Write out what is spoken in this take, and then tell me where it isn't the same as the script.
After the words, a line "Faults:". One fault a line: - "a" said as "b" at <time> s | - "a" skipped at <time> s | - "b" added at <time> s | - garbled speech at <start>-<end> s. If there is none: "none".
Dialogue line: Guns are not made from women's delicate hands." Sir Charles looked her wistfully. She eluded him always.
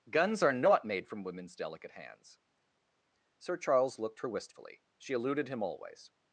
Guns are not made from women's delicate hands." Sir Charles looked her wistfully. She eluded him always.
Faults:
none